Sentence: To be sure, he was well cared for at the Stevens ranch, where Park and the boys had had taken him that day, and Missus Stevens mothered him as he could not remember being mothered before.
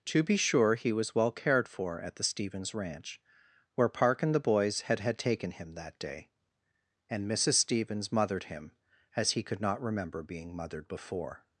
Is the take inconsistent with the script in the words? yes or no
no